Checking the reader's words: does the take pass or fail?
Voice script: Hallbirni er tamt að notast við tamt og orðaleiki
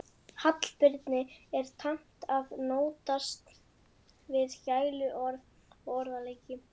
fail